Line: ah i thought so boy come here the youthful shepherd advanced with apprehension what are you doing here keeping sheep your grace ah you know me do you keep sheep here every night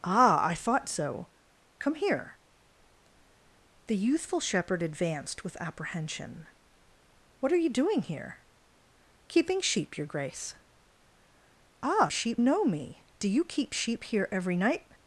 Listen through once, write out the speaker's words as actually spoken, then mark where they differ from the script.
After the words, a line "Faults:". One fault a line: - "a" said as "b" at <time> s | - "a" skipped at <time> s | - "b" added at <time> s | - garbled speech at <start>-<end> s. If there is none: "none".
ah i thought so come here the youthful shepherd advanced with apprehension what are you doing here keeping sheep your grace ah sheep know me do you keep sheep here every night
Faults:
- "boy" skipped at 1.3 s
- "you" said as "sheep" at 12.1 s